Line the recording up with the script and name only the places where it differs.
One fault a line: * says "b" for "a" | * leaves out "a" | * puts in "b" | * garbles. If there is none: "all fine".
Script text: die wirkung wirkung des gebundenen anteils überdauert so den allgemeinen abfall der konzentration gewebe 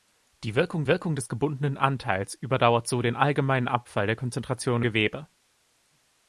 all fine